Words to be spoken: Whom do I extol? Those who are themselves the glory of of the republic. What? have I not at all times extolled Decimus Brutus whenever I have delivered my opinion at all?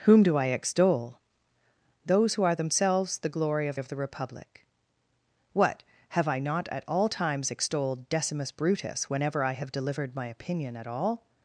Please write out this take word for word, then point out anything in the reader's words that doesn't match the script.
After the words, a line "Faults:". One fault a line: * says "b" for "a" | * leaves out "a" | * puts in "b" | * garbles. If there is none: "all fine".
Whom do I extol? Those who are themselves the glory of of the republic. What? have I not at all times extolled Decimus Brutus whenever I have delivered my opinion at all?
Faults:
all fine